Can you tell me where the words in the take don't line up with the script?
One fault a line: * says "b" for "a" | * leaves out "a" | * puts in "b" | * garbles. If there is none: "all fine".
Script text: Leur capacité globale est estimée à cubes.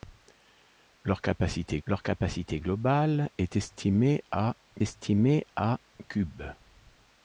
* puts in "leur capacité"
* puts in "estimée à"